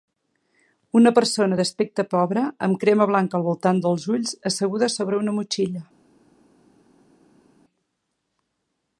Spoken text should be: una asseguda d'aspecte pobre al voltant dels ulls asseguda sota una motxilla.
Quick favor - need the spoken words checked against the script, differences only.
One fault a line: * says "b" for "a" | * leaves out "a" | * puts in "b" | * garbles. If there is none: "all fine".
* says "persona" for "asseguda"
* puts in "amb crema blanca"
* says "sobre" for "sota"